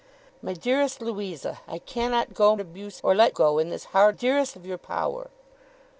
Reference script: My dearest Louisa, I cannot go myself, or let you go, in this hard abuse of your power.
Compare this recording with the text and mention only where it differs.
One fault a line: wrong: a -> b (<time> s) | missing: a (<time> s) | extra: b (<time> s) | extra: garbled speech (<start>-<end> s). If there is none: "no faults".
wrong: myself -> abuse (2.6 s)
missing: you (3.3 s)
wrong: abuse -> dearest (4.1 s)